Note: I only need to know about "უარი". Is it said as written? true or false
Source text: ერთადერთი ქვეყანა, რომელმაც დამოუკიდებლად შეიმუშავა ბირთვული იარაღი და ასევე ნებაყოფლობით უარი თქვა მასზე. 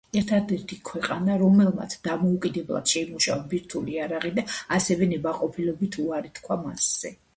true